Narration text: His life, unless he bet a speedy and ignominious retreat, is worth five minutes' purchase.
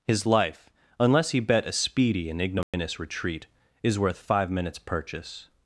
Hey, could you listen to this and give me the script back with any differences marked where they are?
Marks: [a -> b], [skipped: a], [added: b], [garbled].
His life, unless he bet a speedy and ignominious retreat, is worth five minutes' purchase.